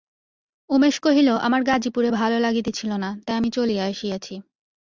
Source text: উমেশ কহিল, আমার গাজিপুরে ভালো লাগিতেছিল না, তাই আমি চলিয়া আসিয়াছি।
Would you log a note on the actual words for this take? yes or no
no